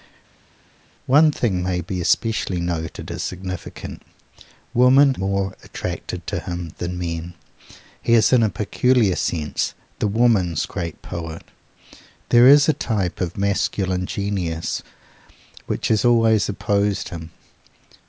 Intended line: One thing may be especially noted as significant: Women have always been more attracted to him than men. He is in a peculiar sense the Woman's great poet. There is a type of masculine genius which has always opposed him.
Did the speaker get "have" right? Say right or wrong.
wrong